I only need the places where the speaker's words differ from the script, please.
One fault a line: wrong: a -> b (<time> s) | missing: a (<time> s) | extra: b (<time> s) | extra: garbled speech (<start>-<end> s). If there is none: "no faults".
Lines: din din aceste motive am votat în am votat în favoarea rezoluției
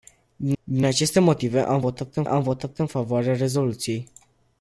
no faults